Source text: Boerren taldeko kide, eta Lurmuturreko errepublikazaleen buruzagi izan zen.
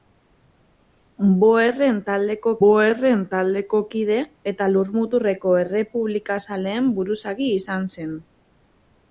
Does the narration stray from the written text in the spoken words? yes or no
yes